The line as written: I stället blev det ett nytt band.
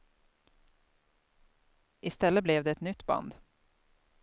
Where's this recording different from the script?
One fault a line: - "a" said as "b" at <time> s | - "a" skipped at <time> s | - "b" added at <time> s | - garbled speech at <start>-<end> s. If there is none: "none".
none